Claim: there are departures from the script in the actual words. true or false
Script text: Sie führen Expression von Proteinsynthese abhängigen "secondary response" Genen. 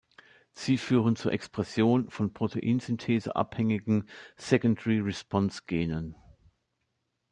true